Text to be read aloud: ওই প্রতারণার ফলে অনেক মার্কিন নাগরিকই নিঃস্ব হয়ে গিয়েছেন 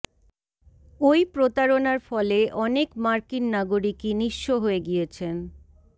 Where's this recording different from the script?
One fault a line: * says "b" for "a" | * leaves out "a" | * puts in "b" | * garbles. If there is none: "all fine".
all fine